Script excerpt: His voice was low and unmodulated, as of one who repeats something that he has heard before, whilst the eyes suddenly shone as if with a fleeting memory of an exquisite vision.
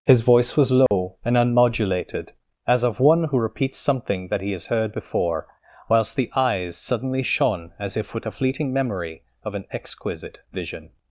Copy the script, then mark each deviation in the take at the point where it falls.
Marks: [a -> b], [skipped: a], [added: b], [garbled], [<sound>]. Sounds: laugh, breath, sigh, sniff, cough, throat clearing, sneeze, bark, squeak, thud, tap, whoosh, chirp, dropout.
His voice was low [dropout] and unmodulated, as of one who repeats something that he has heard before, whilst the eyes suddenly shone as if with a fleeting memory of an exquisite vision.